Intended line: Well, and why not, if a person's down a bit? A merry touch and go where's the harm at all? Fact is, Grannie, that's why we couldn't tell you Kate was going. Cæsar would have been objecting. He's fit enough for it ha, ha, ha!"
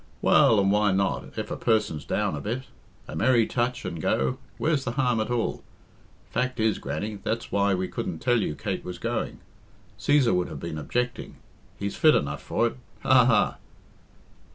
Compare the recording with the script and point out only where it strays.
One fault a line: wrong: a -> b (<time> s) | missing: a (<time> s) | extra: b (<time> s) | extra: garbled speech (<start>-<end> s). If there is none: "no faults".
no faults